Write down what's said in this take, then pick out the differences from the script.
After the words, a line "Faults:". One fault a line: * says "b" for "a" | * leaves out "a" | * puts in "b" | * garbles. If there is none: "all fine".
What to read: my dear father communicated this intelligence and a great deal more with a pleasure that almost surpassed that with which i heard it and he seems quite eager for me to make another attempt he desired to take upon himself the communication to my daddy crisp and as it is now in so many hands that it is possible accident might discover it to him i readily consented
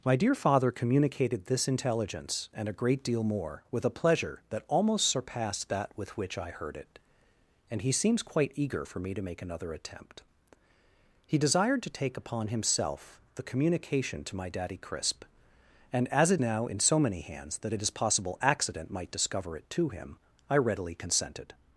my dear father communicated this intelligence and a great deal more with a pleasure that almost surpassed that with which i heard it and he seems quite eager for me to make another attempt he desired to take upon himself the communication to my daddy crisp and as it now in so many hands that it is possible accident might discover it to him i readily consented
Faults:
* leaves out "is"